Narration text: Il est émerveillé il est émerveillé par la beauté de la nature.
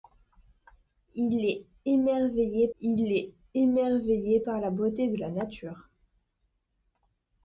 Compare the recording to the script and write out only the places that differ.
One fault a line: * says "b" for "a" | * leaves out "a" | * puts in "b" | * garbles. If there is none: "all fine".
all fine